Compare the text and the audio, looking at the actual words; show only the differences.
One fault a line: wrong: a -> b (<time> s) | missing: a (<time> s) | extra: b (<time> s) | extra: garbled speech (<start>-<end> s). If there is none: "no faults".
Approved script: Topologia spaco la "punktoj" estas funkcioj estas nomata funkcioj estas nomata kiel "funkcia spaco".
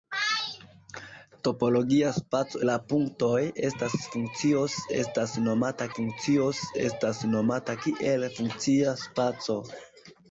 no faults